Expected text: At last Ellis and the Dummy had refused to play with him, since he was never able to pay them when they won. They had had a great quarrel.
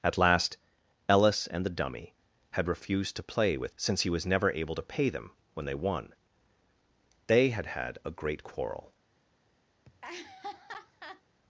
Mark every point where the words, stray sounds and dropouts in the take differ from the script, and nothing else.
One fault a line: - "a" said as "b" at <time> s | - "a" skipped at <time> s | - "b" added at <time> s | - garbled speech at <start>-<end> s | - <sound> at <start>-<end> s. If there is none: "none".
- "him" skipped at 3.8 s
- laugh at 9.8-11.2 s